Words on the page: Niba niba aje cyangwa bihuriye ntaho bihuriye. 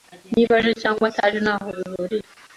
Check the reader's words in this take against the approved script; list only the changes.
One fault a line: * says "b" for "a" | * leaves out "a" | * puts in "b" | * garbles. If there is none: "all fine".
* leaves out "niba"
* says "ataje" for "bihuriye"